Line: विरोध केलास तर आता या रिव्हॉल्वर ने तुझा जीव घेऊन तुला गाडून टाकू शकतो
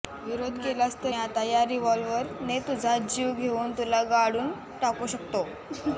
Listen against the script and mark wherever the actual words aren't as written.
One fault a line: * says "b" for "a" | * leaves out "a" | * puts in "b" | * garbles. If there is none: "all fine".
all fine